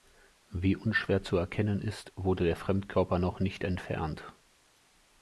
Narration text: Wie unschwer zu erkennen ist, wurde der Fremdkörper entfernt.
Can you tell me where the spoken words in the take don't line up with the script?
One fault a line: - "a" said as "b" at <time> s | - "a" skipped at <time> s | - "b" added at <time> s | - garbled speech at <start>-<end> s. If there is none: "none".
- "noch nicht" added at 3.2 s